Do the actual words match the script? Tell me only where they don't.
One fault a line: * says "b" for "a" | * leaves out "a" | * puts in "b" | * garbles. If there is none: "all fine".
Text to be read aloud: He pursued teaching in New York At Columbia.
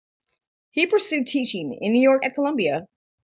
all fine